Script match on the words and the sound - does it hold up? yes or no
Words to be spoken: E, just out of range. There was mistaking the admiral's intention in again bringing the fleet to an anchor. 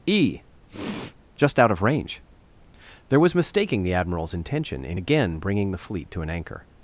no